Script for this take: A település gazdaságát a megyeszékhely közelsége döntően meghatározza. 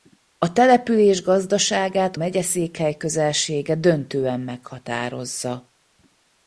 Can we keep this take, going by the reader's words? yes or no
no